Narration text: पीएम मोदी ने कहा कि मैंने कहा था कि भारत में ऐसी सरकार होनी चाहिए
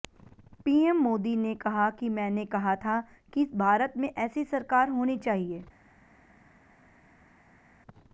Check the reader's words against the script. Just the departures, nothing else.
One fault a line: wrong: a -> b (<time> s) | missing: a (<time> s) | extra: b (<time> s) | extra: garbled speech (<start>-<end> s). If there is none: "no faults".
no faults